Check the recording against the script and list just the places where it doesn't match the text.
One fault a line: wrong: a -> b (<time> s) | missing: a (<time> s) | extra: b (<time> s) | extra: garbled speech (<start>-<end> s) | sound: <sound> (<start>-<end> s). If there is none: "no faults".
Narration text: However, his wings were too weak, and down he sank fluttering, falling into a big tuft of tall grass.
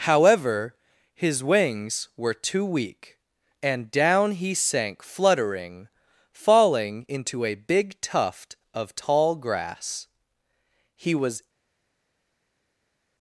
extra: He was (10.9 s)